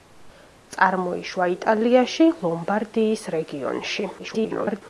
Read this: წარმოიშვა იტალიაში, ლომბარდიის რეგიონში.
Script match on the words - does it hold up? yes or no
no